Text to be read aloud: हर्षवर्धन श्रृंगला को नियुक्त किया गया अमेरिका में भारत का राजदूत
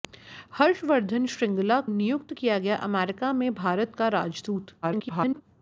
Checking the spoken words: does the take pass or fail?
fail